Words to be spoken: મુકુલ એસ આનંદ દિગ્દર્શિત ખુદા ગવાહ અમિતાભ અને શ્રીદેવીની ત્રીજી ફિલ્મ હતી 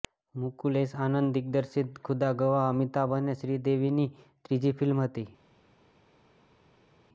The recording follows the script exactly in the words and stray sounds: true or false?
true